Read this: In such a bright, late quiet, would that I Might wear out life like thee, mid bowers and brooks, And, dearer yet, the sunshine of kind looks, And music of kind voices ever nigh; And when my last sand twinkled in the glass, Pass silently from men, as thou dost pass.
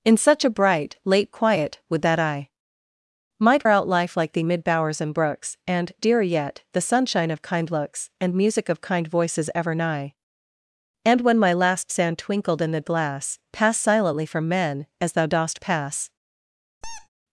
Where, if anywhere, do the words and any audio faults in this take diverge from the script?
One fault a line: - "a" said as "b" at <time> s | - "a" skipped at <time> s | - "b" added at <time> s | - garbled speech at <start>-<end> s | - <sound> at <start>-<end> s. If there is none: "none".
- "wear" skipped at 3.7 s
- squeak at 16.8-17.1 s